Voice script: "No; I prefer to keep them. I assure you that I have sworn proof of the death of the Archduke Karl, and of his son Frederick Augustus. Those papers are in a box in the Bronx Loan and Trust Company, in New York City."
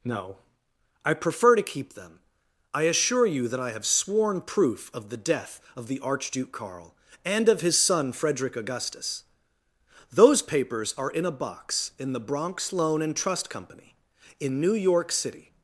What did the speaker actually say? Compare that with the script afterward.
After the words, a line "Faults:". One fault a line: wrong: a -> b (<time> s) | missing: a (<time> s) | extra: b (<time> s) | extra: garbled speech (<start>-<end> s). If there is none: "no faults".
"No; I prefer to keep them. I assure you that I have sworn proof of the death of the Archduke Karl, and of his son Frederick Augustus. Those papers are in a box in the Bronx Loan and Trust Company, in New York City."
Faults:
no faults